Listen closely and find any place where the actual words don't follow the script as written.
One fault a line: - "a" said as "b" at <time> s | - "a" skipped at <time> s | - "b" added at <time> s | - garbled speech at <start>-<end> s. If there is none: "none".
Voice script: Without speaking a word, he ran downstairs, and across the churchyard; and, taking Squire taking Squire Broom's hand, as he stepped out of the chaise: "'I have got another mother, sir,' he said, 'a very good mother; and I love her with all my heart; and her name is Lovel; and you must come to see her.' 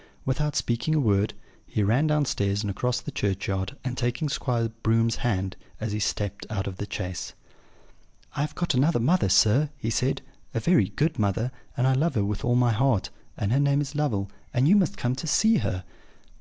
- "taking Squire" skipped at 4.7 s